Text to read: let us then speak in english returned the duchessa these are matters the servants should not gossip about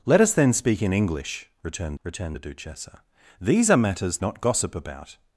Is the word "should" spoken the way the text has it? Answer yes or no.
no